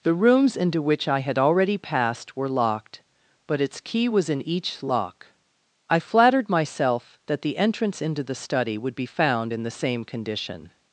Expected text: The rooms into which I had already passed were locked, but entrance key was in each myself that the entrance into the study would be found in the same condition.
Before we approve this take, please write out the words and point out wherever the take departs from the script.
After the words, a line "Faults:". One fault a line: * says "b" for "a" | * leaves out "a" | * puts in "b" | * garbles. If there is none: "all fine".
The rooms into which I had already passed were locked, but its key was in each lock. I flattered myself that the entrance into the study would be found in the same condition.
Faults:
* says "its" for "entrance"
* puts in "lock I flattered"